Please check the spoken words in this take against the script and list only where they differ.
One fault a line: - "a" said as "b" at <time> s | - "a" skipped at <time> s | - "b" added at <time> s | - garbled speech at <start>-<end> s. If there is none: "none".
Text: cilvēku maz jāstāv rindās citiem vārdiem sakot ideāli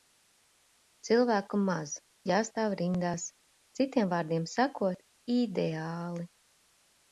none